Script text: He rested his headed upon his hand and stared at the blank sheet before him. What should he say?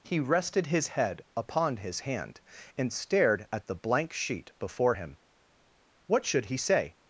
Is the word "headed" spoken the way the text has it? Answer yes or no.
no